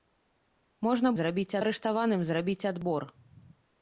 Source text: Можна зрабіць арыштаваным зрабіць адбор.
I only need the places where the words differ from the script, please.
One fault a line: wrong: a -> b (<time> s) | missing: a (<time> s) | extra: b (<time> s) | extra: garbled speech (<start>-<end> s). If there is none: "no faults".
no faults